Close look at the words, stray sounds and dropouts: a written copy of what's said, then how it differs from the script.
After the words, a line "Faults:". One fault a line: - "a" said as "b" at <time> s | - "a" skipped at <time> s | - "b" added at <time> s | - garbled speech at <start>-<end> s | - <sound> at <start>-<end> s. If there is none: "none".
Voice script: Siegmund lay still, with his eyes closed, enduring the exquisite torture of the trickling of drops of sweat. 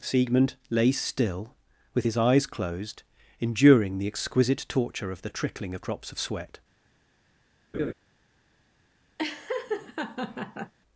Siegmund lay still, with his eyes closed, enduring the exquisite torture of the trickling of drops of sweat.
Faults:
- laugh at 7.7-7.9 s
- laugh at 9.2-10.7 s